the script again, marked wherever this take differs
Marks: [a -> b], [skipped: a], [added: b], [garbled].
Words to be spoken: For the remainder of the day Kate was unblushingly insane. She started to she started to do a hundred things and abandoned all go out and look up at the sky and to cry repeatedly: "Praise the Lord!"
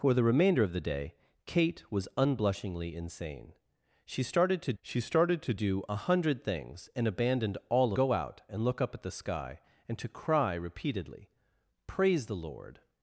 For the remainder of the day Kate was unblushingly insane. She started to she started to do a hundred things and abandoned all go out and look up at the sky and to cry repeatedly: "Praise the Lord!"